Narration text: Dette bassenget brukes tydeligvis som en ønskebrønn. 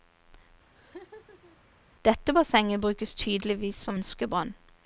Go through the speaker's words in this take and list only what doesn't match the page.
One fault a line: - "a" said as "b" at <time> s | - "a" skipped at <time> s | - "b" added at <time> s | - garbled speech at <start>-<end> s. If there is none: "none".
- "en" skipped at 4.0 s